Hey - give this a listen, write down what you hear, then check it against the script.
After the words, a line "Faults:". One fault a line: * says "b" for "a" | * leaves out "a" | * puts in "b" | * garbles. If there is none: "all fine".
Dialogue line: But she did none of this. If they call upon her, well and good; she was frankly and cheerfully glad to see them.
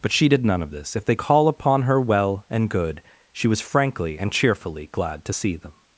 But she did none of this. If they call upon her, well and good; she was frankly and cheerfully glad to see them.
Faults:
all fine